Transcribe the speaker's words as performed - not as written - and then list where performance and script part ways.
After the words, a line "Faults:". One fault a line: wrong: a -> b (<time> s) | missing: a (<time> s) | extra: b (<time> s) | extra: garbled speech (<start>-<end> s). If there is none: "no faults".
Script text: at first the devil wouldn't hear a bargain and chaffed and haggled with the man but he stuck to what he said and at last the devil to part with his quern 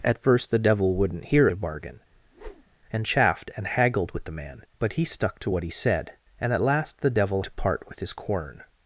at first the devil wouldn't hear a bargain and chaffed and haggled with the man but he stuck to what he said and at last the devil to part with his quern
Faults:
no faults